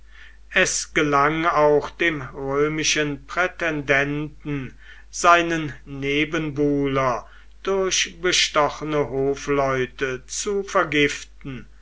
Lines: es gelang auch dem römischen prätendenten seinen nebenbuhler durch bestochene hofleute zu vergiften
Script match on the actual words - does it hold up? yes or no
yes